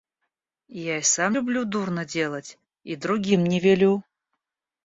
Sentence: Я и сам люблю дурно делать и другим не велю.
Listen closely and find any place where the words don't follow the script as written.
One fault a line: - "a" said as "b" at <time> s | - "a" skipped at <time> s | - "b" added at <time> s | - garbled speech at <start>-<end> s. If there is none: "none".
none